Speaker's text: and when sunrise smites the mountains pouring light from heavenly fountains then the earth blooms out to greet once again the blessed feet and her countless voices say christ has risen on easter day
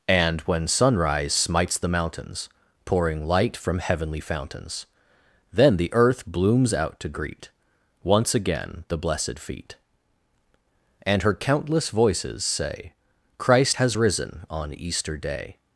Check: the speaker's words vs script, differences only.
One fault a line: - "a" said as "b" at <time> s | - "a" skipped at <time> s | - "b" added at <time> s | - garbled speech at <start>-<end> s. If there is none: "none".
none